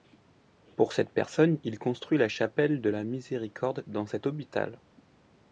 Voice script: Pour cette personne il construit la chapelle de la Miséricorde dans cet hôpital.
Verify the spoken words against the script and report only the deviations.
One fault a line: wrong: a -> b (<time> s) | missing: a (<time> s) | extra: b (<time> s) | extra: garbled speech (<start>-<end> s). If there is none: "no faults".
no faults